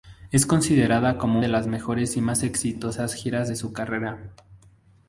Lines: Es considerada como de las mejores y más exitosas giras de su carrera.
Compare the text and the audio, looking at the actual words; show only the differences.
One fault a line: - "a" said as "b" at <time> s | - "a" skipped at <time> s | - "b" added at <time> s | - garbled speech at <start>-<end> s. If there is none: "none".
none